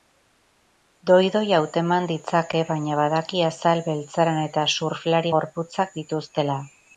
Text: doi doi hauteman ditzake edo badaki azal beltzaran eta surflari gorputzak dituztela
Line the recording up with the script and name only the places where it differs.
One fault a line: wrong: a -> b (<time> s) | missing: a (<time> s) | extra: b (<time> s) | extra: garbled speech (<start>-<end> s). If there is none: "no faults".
wrong: edo -> baina (2.7 s)